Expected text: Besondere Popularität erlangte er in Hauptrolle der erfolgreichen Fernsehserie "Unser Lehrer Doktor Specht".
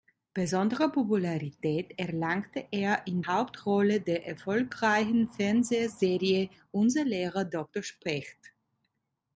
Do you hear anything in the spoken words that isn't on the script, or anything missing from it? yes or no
no